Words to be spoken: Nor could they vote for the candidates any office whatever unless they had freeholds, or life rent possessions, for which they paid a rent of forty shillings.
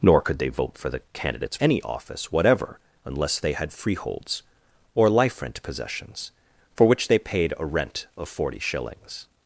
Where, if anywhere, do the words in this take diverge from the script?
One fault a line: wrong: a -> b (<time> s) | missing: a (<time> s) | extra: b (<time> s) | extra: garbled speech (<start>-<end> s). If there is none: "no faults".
no faults